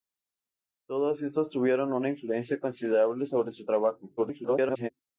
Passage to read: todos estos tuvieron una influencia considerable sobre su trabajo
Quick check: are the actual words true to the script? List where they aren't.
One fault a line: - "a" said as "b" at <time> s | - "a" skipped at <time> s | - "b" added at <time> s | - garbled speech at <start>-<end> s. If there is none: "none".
- garbled speech at 4.2-4.9 s